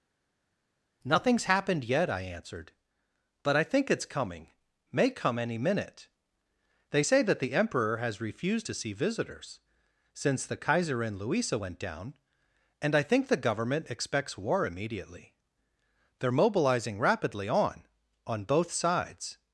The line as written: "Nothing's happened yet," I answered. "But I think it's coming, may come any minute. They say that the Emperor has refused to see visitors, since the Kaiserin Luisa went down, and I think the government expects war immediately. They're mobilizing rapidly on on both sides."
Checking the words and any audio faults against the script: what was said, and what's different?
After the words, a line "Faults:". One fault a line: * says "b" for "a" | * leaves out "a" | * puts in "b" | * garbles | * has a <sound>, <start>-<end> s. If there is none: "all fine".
"Nothing's happened yet," I answered. "But I think it's coming, may come any minute. They say that the Emperor has refused to see visitors, since the Kaiserin Luisa went down, and I think the government expects war immediately. They're mobilizing rapidly on on both sides."
Faults:
all fine